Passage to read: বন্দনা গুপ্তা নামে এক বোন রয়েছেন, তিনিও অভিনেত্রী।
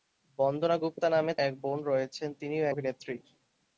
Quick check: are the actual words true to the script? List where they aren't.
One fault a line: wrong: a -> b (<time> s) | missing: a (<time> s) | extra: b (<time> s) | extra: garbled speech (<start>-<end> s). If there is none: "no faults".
no faults